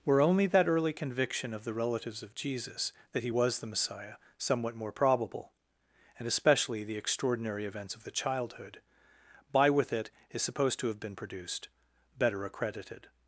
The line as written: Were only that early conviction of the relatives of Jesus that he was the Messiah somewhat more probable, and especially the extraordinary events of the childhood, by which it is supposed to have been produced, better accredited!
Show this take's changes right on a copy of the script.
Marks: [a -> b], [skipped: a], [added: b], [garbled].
Were only that early conviction of the relatives of Jesus that he was the Messiah somewhat more probable, and especially the extraordinary events of the childhood, by [which -> with] it is supposed to have been produced, better accredited!